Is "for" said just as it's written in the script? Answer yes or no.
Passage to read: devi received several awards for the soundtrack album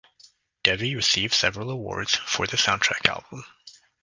yes